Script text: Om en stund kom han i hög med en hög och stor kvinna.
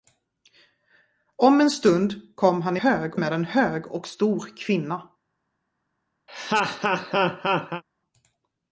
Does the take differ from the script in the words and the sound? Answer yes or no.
yes